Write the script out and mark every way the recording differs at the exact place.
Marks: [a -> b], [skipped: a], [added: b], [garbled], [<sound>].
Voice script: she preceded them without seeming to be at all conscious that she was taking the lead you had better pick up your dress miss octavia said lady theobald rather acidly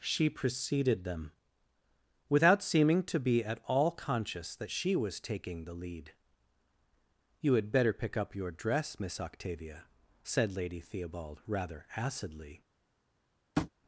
she preceded them without seeming to be at all conscious that she was taking the lead you had better pick up your dress miss octavia said lady theobald rather acidly [tap]